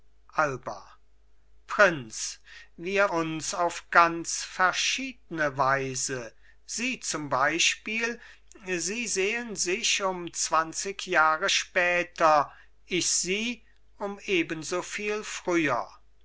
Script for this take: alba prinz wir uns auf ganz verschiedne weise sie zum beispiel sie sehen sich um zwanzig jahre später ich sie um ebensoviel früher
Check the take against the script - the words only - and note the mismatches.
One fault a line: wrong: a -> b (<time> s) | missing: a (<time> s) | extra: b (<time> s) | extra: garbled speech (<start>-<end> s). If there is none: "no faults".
no faults